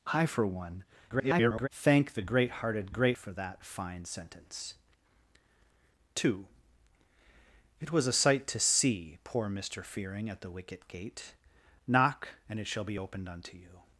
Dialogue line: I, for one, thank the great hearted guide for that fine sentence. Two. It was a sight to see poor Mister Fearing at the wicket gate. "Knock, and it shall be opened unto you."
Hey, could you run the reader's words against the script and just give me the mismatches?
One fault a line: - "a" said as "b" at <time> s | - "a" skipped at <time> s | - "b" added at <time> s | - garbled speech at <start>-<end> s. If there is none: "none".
- garbled speech at 1.1-1.7 s
- "guide" said as "great" at 2.9 s